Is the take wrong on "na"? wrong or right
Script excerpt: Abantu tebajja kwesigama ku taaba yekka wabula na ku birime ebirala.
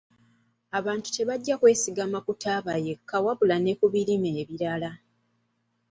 wrong